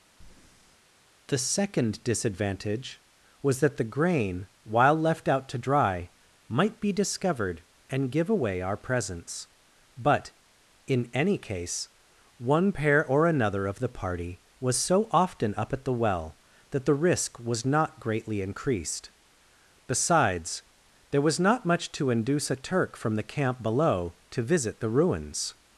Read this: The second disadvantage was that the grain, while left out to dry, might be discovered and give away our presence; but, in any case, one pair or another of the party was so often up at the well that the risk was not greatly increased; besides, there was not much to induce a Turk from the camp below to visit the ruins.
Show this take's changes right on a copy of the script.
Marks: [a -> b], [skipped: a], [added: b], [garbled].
The second disadvantage was that the grain, while left out to dry, might be discovered and give away our presence; but, in any case, one pair or another of the party was so often up at the well that the risk was not greatly increased; besides, there was not much to induce a Turk from the camp below to visit the ruins.